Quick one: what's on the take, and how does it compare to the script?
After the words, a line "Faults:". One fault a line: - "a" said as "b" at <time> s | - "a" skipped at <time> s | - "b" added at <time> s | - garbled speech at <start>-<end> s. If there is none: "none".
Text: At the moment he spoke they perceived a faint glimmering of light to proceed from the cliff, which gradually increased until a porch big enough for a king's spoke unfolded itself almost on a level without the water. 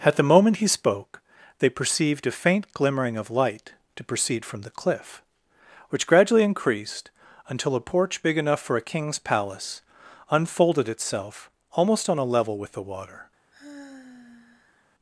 At the moment he spoke they perceived a faint glimmering of light to proceed from the cliff, which gradually increased until a porch big enough for a king's palace unfolded itself almost on a level with the water.
Faults:
- "spoke" said as "palace" at 9.2 s
- "without" said as "with" at 12.6 s